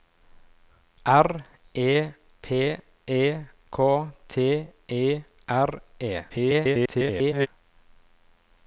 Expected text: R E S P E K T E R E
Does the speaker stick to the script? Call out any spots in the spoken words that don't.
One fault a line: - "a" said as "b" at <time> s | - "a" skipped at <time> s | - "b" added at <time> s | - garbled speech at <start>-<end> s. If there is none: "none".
- "S" skipped at 2.1 s
- garbled speech at 6.3-7.5 s